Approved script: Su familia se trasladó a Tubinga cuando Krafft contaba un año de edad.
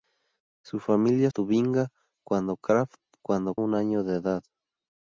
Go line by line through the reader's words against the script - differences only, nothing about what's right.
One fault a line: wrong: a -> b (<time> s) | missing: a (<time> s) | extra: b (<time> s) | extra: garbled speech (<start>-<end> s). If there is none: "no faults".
missing: se trasladó a (1.3 s)
wrong: contaba -> cuando (3.2 s)